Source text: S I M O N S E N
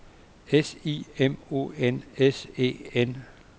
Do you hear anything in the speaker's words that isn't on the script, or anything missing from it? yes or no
no